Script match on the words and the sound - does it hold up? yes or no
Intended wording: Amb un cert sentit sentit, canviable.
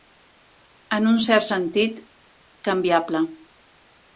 no